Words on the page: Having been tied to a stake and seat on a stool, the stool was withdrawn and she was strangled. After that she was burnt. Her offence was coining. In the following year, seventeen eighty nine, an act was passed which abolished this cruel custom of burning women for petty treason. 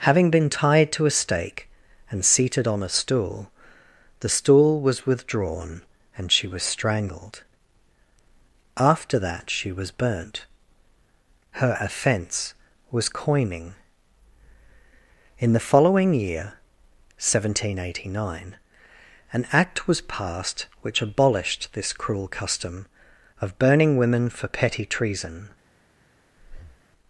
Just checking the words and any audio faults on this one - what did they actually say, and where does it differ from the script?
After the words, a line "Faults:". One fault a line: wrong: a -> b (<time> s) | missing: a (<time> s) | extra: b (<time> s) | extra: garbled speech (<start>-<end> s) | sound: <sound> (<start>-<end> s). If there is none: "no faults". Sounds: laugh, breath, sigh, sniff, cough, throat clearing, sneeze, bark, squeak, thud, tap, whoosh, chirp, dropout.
Having been tied to a stake and seated on a stool, the stool was withdrawn and she was strangled. After that she was burnt. Her offence was coining. In the following year, seventeen eighty nine, an act was passed which abolished this cruel custom of burning women for petty treason.
Faults:
wrong: seat -> seated (2.2 s)
sound: breath (26.4-26.8 s)